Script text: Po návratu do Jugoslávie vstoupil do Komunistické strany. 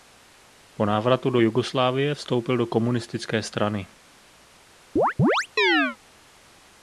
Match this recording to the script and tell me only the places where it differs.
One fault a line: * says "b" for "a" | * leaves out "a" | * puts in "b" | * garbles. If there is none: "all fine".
all fine